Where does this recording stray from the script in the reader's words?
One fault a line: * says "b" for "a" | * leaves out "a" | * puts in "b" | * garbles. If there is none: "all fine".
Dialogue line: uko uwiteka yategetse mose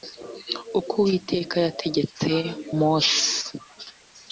all fine